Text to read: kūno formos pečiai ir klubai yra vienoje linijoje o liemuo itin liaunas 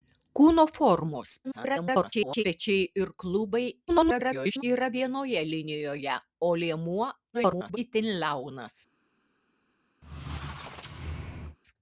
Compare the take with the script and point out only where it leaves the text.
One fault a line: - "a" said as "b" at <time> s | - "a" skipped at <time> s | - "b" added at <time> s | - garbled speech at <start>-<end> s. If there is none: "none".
- garbled speech at 1.4-2.4 s
- garbled speech at 3.9-4.6 s
- garbled speech at 7.3-7.8 s